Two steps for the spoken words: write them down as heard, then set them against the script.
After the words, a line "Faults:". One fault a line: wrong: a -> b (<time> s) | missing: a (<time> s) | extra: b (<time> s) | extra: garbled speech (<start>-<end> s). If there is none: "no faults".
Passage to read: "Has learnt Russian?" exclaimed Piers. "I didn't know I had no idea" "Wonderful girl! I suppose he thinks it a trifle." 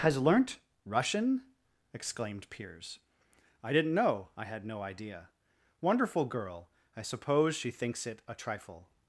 "Has learnt Russian?" exclaimed Piers. "I didn't know I had no idea" "Wonderful girl! I suppose she thinks it a trifle."
Faults:
wrong: he -> she (7.5 s)